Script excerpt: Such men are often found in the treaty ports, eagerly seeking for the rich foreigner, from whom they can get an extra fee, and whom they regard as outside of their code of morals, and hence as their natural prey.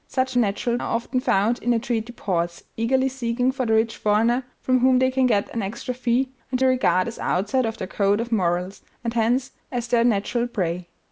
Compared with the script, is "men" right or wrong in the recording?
wrong